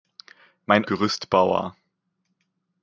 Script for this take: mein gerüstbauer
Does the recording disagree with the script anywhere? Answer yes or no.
no